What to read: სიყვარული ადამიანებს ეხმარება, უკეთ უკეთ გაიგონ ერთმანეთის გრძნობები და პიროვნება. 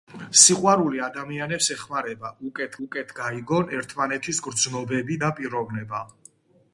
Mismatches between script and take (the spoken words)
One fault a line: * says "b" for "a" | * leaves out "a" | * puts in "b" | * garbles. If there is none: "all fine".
all fine